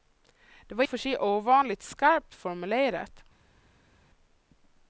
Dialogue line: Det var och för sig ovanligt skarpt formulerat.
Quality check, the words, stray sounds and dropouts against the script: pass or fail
pass